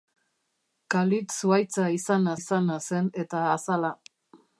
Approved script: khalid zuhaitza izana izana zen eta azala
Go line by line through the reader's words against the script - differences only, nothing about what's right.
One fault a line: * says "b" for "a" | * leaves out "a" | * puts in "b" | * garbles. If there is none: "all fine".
all fine